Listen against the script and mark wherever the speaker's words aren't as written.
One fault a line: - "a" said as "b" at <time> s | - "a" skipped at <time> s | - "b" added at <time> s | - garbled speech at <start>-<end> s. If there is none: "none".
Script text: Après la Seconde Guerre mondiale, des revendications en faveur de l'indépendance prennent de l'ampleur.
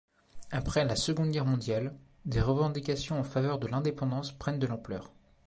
none